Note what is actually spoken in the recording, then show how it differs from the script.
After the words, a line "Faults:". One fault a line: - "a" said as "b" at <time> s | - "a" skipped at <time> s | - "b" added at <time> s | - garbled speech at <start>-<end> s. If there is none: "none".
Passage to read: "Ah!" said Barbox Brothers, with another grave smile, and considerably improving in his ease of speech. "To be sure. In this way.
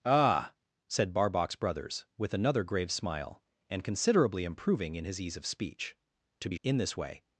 "Ah!" said Barbox Brothers, with another grave smile, and considerably improving in his ease of speech. "To be. In this way.
Faults:
- "sure" skipped at 6.6 s